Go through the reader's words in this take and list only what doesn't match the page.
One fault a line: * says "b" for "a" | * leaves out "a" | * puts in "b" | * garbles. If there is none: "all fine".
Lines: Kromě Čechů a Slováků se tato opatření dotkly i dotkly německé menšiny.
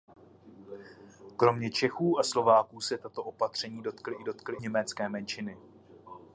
all fine